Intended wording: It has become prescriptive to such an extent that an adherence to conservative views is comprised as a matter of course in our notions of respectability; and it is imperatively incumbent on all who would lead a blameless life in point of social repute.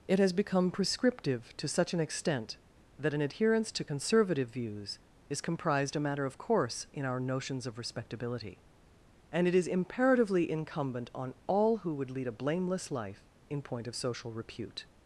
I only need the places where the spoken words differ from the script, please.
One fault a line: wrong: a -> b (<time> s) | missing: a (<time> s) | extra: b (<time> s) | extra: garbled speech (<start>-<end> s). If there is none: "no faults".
missing: as (5.9 s)